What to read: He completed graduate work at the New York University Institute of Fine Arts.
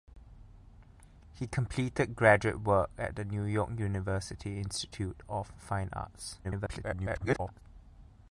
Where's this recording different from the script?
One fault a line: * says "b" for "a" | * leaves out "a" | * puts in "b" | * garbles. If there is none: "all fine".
* garbles